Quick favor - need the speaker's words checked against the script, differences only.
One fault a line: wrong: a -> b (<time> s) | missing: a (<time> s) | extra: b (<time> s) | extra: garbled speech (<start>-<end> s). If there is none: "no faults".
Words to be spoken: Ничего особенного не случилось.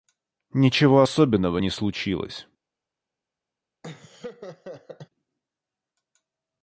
no faults